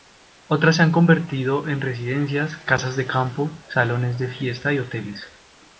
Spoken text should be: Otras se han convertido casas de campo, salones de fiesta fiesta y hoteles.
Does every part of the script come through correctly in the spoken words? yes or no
no